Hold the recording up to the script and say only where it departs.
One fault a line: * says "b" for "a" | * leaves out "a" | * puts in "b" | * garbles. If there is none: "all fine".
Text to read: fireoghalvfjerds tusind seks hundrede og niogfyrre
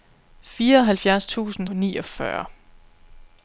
* leaves out "seks hundrede og"